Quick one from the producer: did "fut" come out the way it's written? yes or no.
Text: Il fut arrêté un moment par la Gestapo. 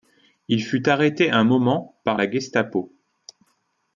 yes